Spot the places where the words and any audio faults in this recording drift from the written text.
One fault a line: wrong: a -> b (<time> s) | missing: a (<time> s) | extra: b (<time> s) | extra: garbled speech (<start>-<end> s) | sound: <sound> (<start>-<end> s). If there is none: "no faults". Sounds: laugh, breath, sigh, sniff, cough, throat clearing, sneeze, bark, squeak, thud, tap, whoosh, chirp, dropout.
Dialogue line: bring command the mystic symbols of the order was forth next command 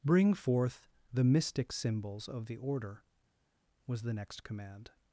wrong: command -> forth (0.3 s)
wrong: forth -> the (4.0 s)